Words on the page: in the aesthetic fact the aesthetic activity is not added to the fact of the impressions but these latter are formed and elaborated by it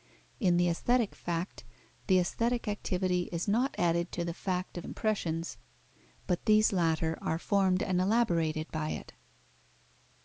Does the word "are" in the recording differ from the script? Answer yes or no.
no